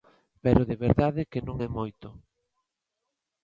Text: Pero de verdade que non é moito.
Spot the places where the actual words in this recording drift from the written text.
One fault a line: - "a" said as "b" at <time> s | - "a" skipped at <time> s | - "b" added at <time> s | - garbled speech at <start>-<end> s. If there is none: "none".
none